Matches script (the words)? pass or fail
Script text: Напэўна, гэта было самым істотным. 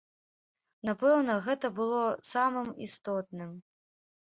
pass